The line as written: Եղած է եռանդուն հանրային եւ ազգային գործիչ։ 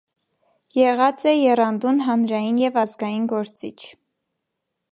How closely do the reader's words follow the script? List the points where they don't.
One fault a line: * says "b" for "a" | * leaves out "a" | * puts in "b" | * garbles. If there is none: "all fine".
all fine